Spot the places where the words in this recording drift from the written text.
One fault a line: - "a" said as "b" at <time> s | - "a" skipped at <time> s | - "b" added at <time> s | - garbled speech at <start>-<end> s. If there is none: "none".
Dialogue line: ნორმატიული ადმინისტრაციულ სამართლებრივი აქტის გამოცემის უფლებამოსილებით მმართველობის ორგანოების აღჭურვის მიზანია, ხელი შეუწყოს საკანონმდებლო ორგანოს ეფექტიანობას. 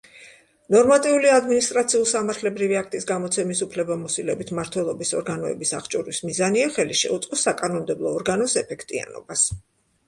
none